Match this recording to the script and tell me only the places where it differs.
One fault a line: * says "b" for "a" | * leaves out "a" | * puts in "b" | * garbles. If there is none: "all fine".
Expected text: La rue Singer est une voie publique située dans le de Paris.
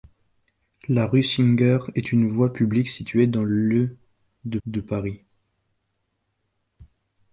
* puts in "de"